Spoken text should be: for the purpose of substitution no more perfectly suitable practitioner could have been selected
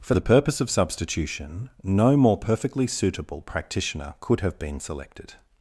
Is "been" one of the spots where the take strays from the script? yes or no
no